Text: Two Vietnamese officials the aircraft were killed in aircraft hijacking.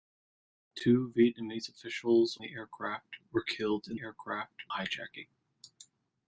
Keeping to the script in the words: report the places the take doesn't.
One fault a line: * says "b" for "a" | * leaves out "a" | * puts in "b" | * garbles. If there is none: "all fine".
all fine